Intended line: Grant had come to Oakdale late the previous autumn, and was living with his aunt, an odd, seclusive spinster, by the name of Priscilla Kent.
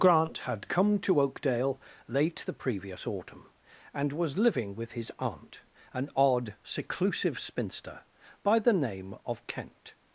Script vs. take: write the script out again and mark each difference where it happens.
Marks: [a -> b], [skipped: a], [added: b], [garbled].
Grant had come to Oakdale late the previous autumn, and was living with his aunt, an odd, seclusive spinster, by the name of [skipped: Priscilla] Kent.